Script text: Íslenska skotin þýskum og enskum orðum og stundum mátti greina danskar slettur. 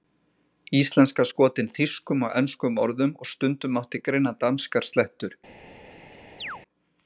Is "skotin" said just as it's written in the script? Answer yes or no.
yes